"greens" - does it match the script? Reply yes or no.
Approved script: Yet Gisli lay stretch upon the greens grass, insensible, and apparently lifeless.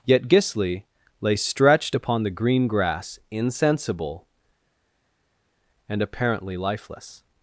no